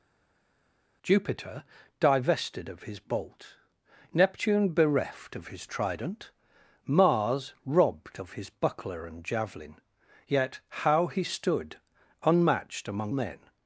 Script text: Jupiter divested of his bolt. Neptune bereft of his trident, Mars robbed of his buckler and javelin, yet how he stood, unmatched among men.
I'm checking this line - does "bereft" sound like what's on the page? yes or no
yes